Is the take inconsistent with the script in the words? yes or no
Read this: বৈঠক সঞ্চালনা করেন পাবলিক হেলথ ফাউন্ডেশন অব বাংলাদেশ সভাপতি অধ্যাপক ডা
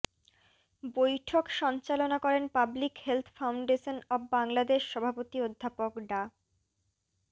no